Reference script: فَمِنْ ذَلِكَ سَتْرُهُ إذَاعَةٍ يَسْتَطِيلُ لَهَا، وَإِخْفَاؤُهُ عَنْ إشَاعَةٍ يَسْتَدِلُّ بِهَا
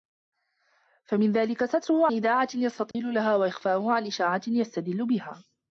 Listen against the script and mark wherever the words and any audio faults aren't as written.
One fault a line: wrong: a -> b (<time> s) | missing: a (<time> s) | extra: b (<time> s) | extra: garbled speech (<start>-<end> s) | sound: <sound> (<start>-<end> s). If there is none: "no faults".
sound: dropout (2.9-2.9 s)